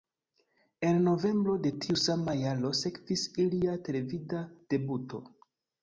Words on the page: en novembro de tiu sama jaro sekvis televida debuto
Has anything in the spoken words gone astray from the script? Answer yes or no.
yes